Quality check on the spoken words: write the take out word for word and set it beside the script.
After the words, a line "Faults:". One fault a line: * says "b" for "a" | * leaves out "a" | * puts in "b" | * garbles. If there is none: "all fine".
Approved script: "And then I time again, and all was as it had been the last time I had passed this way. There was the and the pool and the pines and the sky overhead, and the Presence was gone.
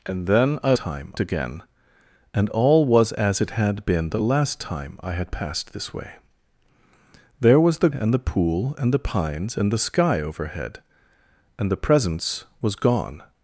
"And then I time again, and all was as it had been the last time I had passed this way. There was the and the pool and the pines and the sky overhead, and the Presence was gone.
Faults:
all fine